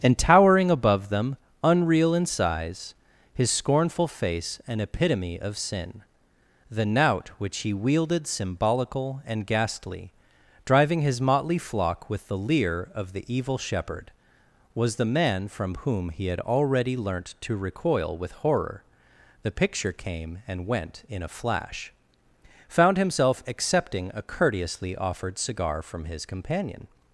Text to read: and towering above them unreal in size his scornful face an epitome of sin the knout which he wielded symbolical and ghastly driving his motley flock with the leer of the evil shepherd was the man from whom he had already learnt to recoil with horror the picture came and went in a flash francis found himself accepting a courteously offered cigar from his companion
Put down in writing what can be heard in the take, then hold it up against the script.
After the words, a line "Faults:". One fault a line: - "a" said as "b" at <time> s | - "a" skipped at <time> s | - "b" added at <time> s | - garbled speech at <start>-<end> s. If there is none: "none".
and towering above them unreal in size his scornful face an epitome of sin the knout which he wielded symbolical and ghastly driving his motley flock with the leer of the evil shepherd was the man from whom he had already learnt to recoil with horror the picture came and went in a flash found himself accepting a courteously offered cigar from his companion
Faults:
- "francis" skipped at 21.9 s